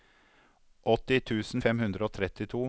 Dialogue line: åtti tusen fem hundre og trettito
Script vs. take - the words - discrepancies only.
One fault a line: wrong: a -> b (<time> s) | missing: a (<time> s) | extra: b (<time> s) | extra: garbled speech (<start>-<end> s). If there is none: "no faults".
no faults